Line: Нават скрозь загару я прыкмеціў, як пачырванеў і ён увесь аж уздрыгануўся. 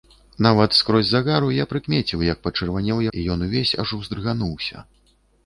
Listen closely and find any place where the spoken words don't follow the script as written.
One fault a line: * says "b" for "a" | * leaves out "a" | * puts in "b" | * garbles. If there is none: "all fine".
all fine